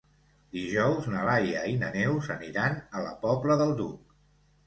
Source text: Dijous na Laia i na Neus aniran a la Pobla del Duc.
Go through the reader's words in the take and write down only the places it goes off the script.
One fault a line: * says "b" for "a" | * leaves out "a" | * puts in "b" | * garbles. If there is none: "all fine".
all fine